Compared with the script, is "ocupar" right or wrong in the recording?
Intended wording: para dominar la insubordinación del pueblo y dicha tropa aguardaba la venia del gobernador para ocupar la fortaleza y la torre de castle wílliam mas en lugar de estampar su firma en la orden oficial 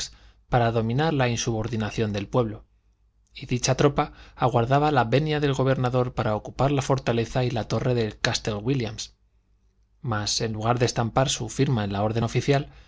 right